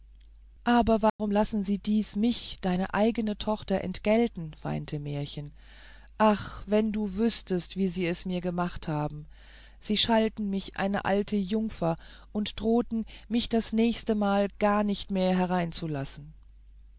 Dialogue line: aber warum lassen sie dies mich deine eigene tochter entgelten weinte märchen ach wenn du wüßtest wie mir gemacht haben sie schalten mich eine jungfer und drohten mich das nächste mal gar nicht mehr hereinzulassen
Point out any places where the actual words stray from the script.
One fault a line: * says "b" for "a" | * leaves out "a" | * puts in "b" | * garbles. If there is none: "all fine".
* puts in "sie es"
* puts in "alte"